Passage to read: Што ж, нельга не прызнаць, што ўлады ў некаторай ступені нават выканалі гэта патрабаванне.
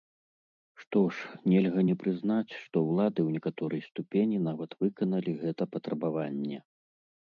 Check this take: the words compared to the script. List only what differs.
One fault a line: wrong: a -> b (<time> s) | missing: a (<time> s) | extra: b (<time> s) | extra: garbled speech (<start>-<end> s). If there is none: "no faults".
no faults